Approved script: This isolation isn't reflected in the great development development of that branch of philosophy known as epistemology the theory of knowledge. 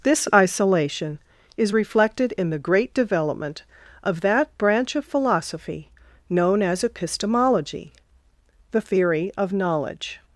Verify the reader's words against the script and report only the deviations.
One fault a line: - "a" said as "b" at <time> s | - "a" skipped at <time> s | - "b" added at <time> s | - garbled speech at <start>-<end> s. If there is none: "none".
- "isn't" said as "is" at 1.6 s
- "development" skipped at 3.6 s